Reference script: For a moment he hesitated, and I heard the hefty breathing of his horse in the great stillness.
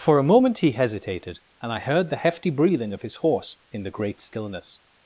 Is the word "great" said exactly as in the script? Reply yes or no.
yes